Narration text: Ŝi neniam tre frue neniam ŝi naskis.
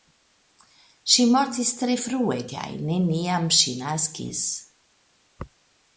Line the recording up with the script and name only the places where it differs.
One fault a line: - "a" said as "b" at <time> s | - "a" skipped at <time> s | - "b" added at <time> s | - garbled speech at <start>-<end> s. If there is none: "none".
- "neniam" said as "mortis" at 1.3 s
- "kaj" added at 2.5 s